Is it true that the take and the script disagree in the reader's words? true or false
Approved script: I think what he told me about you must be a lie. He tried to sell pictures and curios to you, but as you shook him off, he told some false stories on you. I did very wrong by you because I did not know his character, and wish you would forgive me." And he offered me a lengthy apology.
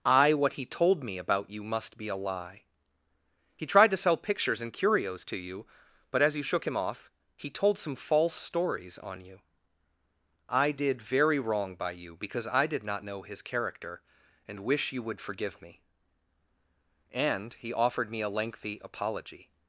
true